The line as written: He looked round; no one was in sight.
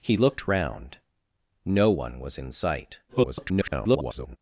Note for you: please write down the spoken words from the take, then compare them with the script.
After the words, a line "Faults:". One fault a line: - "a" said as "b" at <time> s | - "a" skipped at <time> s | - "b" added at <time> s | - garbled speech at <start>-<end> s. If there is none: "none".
He looked round; no one was in sight. [garbled]
Faults:
- garbled speech at 3.1-4.4 s